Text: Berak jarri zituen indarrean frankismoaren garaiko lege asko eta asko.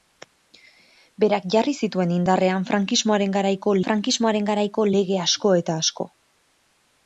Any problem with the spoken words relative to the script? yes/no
yes